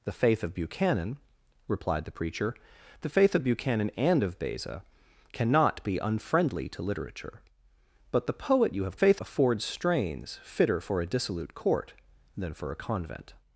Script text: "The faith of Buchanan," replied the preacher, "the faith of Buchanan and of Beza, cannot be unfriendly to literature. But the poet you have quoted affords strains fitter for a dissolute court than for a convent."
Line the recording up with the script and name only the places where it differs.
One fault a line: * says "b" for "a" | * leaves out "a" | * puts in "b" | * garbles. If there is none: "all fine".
* says "faith" for "quoted"